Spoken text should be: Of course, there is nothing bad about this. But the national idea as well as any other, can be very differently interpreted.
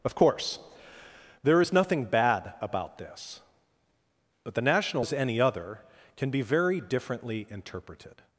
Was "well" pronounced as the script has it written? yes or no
no